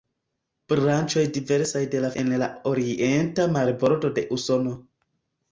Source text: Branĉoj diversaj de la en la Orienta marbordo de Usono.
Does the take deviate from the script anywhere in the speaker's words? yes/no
no